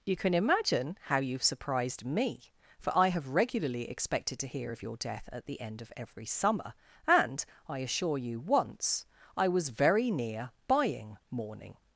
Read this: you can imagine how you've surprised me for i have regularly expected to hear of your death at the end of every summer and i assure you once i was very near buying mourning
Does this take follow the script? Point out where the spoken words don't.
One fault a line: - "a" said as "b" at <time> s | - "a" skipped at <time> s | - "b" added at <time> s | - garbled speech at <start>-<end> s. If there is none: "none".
none